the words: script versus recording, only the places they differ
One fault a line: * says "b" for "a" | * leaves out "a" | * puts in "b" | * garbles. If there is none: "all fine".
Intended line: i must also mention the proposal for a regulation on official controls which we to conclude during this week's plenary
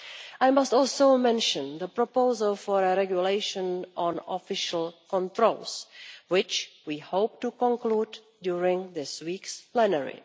* puts in "hope"